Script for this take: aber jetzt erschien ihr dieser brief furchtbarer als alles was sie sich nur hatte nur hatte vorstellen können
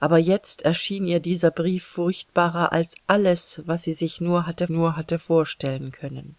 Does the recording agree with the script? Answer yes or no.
yes